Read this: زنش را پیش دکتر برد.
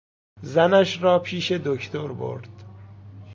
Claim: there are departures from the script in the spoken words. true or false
false